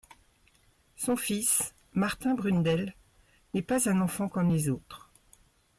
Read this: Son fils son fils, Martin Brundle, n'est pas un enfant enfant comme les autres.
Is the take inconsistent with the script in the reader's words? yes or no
yes